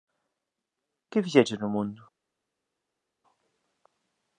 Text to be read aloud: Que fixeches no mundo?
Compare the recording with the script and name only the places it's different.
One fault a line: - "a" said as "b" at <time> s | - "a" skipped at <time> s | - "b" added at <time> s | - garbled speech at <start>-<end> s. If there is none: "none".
none